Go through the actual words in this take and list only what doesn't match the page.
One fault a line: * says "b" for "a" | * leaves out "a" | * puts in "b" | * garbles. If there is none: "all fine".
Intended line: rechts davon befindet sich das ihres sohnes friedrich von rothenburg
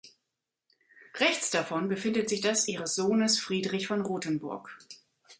all fine